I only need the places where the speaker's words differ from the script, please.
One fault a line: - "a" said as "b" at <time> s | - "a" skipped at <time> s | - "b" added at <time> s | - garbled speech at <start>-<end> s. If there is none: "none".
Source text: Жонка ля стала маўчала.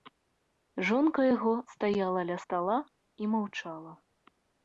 - "яго стаяла" added at 1.3 s
- "і" added at 3.2 s